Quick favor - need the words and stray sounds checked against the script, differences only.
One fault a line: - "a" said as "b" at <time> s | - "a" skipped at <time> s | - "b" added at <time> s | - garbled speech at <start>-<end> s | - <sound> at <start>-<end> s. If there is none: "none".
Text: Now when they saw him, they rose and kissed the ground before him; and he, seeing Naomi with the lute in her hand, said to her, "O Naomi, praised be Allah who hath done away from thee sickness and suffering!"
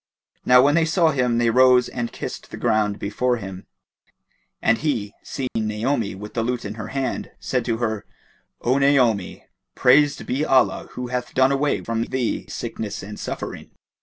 - dropout at 5.5-5.6 s